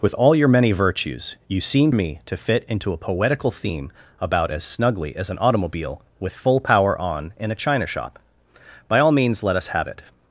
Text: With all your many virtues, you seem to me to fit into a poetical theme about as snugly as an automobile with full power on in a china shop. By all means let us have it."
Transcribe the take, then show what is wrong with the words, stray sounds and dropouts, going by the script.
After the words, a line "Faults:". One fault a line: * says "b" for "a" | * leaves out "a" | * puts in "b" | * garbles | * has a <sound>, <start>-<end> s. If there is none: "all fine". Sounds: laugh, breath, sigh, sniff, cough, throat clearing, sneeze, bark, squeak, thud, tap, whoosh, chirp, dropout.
With all your many virtues, you seem me to fit into a poetical theme about as snugly as an automobile with full power on in a china shop. By all means let us have it."
Faults:
* leaves out "to"